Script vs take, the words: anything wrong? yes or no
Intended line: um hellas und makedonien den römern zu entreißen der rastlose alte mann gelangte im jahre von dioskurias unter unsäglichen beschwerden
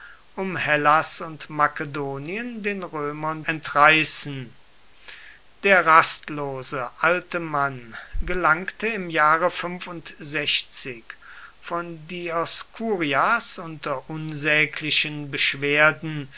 yes